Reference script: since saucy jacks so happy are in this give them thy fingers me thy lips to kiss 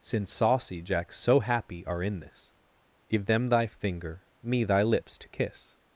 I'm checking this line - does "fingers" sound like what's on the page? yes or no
no